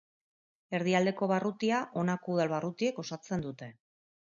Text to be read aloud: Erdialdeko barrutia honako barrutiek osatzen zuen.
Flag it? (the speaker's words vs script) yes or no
yes